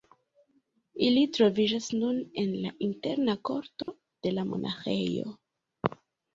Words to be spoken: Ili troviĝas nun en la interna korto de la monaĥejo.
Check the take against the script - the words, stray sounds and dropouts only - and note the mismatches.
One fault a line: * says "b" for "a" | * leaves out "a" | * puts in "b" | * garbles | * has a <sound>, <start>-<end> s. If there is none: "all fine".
* has a dropout, 3.8-3.9 s